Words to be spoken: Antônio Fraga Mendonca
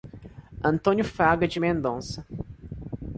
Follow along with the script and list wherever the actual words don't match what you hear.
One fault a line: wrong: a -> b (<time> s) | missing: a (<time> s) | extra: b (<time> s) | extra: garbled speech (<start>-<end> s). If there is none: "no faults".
extra: de (1.5 s)